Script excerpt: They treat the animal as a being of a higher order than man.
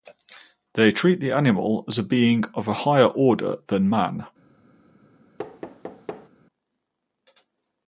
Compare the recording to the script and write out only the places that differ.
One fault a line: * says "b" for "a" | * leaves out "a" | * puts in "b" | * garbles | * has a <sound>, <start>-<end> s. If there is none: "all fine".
* has a thud, 5.4-6.3 s